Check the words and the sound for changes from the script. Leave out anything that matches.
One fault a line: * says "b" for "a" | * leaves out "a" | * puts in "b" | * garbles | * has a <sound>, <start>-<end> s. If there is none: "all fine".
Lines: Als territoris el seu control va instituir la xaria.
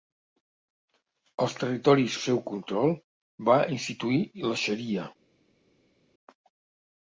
all fine